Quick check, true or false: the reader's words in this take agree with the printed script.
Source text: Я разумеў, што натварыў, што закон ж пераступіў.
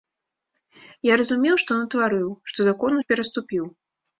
true